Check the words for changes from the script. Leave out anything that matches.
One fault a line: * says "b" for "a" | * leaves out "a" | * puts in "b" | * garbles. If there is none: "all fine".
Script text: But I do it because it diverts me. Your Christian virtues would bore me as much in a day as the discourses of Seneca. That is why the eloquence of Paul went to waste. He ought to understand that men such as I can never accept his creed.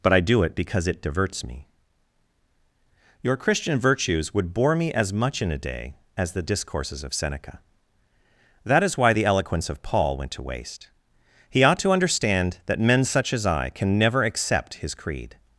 all fine